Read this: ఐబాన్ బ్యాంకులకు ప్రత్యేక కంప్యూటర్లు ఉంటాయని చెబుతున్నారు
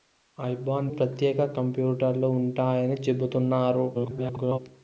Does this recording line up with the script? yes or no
no